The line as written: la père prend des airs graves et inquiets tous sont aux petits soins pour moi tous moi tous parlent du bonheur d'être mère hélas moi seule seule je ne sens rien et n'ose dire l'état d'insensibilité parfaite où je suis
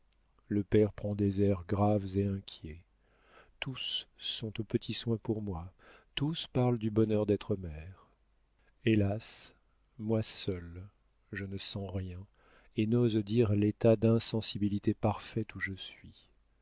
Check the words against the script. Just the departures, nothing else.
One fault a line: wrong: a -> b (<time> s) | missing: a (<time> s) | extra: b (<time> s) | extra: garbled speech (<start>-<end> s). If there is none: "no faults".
wrong: la -> le (0.5 s)
missing: moi tous (6.5 s)
missing: seule (10.9 s)